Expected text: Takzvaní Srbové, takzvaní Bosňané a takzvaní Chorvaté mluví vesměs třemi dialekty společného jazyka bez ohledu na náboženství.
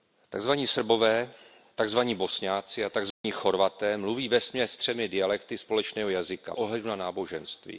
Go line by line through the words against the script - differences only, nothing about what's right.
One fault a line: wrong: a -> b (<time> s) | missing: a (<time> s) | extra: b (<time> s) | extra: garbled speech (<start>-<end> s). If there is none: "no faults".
missing: bez (6.5 s)